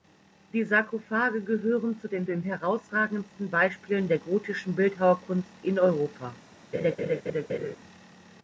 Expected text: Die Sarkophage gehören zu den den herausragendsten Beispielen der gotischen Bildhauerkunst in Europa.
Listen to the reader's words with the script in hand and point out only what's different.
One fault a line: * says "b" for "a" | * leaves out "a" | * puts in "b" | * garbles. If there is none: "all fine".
all fine